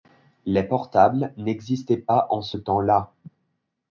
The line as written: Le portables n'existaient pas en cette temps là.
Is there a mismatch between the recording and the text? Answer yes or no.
yes